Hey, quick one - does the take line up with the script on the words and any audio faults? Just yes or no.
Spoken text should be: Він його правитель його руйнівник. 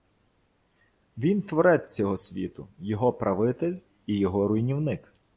no